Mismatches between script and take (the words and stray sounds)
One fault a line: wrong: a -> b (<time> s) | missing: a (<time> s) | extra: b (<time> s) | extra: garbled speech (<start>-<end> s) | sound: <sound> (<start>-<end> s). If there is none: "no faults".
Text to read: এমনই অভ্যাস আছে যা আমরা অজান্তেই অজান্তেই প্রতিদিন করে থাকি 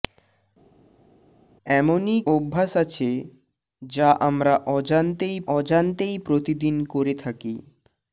no faults